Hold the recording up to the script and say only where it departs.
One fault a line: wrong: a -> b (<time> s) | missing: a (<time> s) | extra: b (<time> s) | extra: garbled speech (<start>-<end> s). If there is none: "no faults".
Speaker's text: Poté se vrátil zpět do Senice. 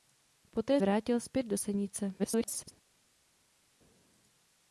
missing: se (0.8 s)
extra: garbled speech (2.2-2.7 s)